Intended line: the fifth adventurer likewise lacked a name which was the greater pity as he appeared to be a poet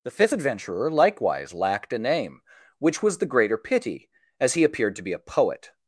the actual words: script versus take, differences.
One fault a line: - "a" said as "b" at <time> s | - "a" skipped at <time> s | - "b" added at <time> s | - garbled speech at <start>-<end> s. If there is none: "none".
none